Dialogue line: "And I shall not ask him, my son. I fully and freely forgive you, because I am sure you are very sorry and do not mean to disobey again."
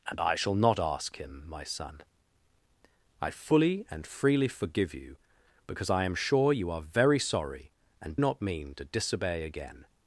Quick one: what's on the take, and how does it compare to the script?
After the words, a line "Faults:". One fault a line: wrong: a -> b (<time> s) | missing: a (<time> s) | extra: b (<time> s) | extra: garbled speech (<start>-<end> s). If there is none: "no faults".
"And I shall not ask him, my son. I fully and freely forgive you, because I am sure you are very sorry and not mean to disobey again."
Faults:
missing: do (8.2 s)